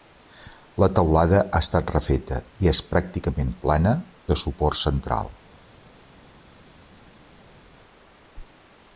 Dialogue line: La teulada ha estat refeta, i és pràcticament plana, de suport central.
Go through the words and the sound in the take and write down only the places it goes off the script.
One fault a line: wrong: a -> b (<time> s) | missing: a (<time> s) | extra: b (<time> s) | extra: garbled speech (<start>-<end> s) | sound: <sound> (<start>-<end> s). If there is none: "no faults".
no faults